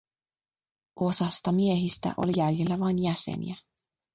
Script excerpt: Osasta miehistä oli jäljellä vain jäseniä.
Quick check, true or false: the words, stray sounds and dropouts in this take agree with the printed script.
true